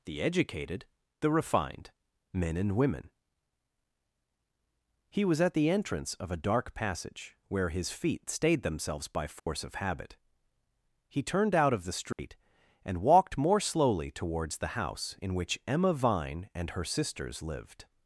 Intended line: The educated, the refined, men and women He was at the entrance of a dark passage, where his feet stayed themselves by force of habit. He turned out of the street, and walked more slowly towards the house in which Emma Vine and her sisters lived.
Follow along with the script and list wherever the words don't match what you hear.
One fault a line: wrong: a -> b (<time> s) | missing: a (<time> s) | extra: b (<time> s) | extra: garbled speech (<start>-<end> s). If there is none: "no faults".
no faults